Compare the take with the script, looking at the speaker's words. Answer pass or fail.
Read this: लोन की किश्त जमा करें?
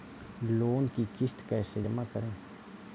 fail